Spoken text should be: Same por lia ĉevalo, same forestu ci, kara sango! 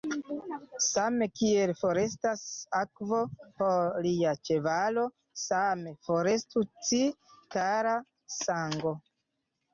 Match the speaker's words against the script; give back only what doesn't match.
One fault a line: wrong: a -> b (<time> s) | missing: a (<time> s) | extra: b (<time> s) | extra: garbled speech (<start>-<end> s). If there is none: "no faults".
extra: kiel forestas akvo (1.4 s)